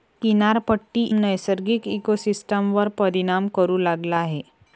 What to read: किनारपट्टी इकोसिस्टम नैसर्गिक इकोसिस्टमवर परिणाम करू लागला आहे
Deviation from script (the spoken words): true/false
true